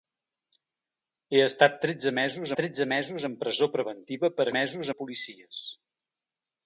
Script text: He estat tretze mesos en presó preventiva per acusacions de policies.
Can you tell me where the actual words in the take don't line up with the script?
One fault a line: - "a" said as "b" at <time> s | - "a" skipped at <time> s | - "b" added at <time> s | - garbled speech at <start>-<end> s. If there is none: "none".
- "tretze mesos" added at 2.6 s
- "acusacions" said as "mesos" at 4.6 s